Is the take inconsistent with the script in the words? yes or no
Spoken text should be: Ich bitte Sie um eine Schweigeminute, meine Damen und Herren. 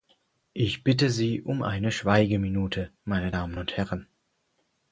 no